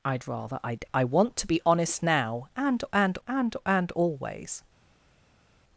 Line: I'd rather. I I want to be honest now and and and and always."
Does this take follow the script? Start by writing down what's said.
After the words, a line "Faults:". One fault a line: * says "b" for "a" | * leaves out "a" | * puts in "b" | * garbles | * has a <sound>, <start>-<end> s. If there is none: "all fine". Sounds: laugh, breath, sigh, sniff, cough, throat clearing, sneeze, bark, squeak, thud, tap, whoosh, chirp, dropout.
I'd rather. I I want to be honest now and and and and always."
Faults:
all fine